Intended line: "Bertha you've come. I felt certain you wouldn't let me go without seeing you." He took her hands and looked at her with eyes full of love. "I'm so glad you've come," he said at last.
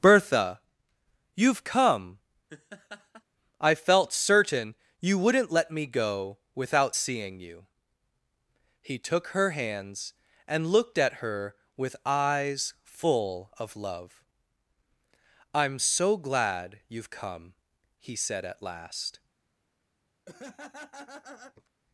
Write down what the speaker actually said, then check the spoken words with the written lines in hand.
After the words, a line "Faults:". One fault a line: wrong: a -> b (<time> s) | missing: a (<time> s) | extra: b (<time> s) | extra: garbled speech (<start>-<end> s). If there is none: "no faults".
"Bertha you've come. I felt certain you wouldn't let me go without seeing you." He took her hands and looked at her with eyes full of love. "I'm so glad you've come," he said at last.
Faults:
no faults